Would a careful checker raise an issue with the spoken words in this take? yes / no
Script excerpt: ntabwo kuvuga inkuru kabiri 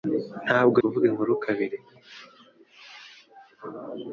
no